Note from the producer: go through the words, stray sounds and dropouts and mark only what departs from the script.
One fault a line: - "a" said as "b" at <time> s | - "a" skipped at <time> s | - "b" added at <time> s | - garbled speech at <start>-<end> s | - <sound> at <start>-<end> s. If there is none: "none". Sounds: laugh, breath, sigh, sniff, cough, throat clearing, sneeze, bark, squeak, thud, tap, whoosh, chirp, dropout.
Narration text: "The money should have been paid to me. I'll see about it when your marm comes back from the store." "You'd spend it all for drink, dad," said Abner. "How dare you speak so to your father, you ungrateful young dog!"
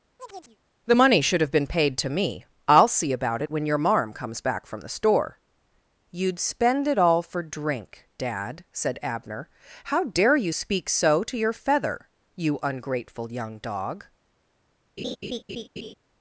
- chirp at 0.2-0.6 s
- "father" said as "feather" at 11.5 s
- laugh at 15.0-15.9 s